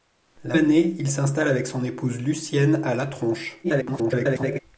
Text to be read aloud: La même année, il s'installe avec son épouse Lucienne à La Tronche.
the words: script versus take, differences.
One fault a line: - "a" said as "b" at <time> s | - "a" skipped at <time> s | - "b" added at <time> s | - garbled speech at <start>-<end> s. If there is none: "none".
- "même" skipped at 0.6 s
- garbled speech at 3.6-4.6 s